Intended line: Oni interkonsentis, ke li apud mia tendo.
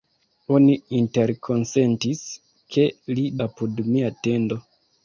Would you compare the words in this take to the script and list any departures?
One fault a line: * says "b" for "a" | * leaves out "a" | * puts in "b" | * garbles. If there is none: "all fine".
all fine